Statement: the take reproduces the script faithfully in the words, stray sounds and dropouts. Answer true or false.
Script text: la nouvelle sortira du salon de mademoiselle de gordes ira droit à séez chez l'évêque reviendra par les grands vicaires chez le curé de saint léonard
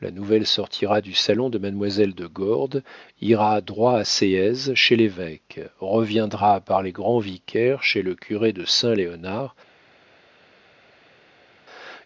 true